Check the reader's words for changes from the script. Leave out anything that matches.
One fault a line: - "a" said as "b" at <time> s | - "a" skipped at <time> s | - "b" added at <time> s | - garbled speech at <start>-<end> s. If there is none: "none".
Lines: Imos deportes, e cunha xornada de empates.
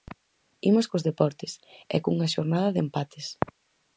- "cos" added at 0.9 s